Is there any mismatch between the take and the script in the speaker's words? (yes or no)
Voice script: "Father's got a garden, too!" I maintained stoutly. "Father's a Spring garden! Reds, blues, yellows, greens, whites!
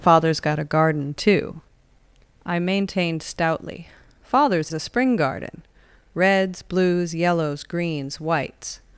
no